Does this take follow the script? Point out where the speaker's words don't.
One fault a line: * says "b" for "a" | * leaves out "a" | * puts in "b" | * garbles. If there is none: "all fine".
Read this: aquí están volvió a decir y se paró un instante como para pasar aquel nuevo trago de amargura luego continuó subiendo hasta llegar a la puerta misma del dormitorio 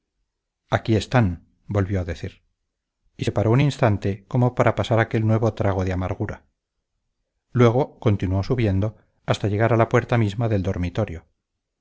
all fine